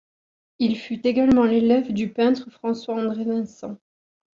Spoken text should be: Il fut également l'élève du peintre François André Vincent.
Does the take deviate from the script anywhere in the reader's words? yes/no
no